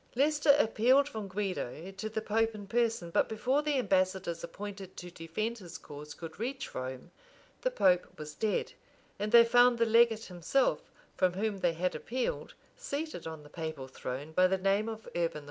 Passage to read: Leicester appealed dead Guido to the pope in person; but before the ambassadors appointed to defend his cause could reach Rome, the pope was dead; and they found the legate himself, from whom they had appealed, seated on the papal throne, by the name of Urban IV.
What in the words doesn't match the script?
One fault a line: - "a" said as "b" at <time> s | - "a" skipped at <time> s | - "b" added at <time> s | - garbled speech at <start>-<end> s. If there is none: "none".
- "dead" said as "from" at 1.1 s